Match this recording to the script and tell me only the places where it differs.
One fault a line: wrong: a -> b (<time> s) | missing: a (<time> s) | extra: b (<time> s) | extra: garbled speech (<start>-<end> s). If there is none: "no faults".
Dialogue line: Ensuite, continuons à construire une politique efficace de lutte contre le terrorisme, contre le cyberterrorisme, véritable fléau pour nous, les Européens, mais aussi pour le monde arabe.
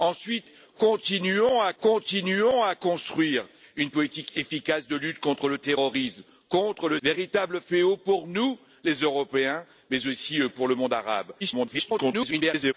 extra: continuons à (1.8 s)
missing: cyberterrorisme (7.0 s)
extra: garbled speech (11.4-12.7 s)